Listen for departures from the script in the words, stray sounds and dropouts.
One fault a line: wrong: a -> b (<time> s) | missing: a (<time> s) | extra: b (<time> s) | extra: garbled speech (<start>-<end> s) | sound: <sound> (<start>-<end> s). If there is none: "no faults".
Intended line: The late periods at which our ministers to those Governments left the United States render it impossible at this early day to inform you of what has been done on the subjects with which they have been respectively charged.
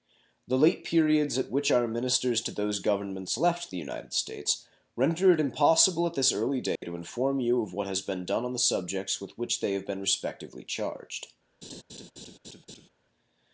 sound: dropout (6.8-6.8 s)
sound: laugh (11.6-12.9 s)